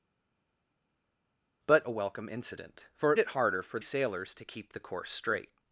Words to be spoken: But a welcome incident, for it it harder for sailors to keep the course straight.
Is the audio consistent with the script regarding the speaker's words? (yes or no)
yes